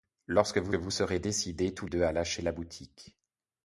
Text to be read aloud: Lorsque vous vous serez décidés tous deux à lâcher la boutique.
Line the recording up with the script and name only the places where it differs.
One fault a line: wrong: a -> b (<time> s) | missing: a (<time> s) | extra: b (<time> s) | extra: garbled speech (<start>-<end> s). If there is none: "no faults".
no faults